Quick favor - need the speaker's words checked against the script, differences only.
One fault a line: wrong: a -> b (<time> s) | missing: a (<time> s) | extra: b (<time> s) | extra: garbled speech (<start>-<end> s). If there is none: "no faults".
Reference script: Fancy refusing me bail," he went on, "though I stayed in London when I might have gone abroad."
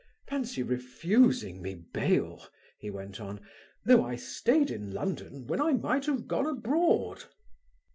no faults